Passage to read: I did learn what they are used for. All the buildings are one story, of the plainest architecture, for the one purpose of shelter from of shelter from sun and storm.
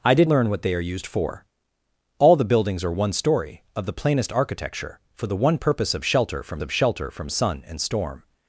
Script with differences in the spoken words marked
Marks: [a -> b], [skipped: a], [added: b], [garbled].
I did learn what they are used for. All the buildings are one story, of the plainest architecture, for the one purpose of shelter from of shelter from sun and storm.